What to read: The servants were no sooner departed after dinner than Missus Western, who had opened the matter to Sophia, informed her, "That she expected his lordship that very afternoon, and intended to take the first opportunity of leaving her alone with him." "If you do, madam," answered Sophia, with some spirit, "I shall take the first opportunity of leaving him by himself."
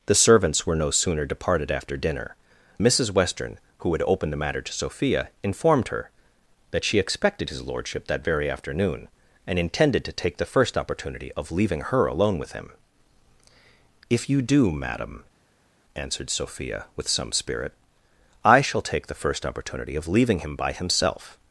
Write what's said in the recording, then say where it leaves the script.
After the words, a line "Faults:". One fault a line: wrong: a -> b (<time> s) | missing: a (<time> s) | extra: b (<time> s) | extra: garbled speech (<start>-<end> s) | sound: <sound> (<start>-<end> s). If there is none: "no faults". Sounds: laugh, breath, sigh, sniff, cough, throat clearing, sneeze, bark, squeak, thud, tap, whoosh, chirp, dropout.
The servants were no sooner departed after dinner Missus Western, who had opened the matter to Sophia, informed her, "That she expected his lordship that very afternoon, and intended to take the first opportunity of leaving her alone with him." "If you do, madam," answered Sophia, with some spirit, "I shall take the first opportunity of leaving him by himself."
Faults:
missing: than (2.4 s)